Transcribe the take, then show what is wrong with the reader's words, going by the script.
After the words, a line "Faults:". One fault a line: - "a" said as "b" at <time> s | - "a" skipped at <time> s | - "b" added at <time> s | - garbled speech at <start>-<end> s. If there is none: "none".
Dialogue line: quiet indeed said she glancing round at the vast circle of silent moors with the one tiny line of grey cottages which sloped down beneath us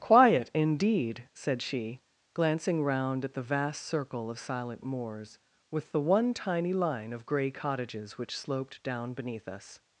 quiet indeed said she glancing round at the vast circle of silent moors with the one tiny line of grey cottages which sloped down beneath us
Faults:
none